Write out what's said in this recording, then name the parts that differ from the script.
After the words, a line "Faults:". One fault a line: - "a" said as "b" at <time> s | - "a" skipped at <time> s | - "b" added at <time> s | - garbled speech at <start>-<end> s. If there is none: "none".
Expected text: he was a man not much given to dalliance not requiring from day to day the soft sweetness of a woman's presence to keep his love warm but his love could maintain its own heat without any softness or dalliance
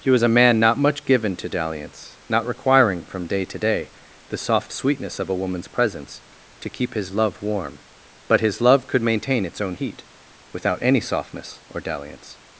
he was a man not much given to dalliance not requiring from day to day the soft sweetness of a woman's presence to keep his love warm but his love could maintain its own heat without any softness or dalliance
Faults:
none